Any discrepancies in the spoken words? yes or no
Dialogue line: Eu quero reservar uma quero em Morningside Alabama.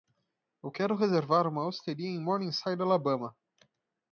yes